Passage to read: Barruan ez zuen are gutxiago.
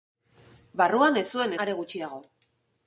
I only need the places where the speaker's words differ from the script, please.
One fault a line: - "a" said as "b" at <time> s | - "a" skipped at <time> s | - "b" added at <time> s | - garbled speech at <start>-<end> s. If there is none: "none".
none